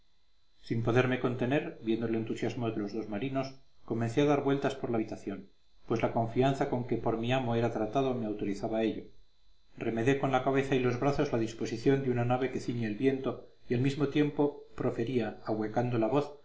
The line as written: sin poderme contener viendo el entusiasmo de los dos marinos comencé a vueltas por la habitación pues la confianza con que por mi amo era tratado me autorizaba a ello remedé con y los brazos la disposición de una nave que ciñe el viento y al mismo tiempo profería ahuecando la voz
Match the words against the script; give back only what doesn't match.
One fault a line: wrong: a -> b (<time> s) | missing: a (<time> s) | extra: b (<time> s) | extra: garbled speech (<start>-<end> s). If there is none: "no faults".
extra: dar (4.2 s)
extra: la cabeza (10.3 s)